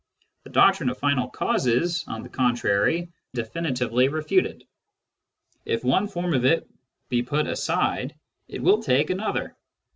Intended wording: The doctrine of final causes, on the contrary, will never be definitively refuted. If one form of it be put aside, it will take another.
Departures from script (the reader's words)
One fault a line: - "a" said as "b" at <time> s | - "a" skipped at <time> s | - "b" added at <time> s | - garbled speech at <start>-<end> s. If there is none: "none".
- "will never be" skipped at 3.1 s